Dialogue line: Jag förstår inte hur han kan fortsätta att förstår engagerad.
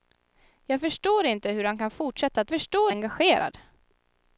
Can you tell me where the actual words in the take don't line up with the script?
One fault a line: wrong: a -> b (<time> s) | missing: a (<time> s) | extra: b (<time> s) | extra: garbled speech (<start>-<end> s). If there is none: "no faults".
no faults